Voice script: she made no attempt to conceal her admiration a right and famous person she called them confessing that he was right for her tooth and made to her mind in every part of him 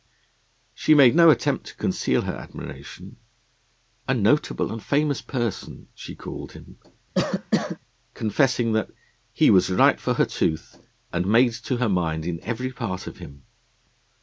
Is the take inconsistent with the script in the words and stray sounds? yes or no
yes